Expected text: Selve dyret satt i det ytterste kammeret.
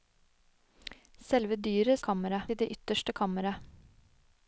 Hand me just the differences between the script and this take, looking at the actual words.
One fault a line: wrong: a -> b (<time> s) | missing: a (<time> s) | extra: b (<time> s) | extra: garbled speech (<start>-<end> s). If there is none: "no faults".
wrong: satt -> kammeret (2.0 s)